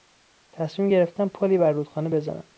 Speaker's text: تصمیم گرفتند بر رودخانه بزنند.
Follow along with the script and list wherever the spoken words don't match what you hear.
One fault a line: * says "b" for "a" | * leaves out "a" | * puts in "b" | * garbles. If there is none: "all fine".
* puts in "پلی"